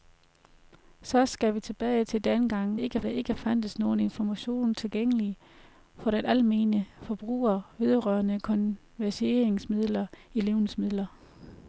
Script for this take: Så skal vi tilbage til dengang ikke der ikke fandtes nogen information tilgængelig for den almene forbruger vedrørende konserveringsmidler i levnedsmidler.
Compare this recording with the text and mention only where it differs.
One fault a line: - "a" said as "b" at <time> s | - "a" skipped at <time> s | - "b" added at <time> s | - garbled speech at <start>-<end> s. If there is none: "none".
none